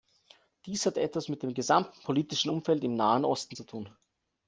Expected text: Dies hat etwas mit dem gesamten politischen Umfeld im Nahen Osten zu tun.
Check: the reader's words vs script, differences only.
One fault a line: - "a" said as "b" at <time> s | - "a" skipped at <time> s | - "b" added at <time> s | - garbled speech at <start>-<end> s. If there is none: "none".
none